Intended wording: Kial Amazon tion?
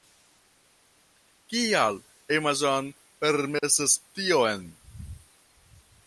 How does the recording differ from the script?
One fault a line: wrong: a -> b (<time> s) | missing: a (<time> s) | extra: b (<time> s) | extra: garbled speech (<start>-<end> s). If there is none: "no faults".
extra: permesas (3.3 s)